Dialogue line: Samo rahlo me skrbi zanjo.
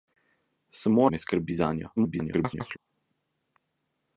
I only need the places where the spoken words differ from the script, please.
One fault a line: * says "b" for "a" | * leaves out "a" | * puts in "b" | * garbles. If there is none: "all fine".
* leaves out "rahlo"
* garbles